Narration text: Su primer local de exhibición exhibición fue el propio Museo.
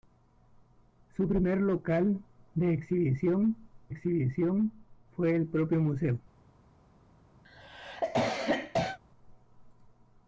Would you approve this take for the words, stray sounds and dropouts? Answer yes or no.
no